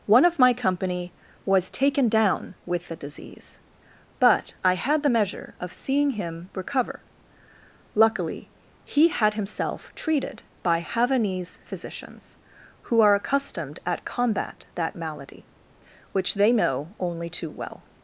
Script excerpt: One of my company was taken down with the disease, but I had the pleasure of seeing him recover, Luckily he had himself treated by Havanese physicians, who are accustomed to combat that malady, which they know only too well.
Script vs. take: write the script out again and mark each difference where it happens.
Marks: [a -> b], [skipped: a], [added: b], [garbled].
One of my company was taken down with the disease, but I had the [pleasure -> measure] of seeing him recover, Luckily he had himself treated by Havanese physicians, who are accustomed [to -> at] combat that malady, which they know only too well.